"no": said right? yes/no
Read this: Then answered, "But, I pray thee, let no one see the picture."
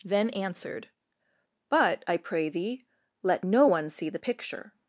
yes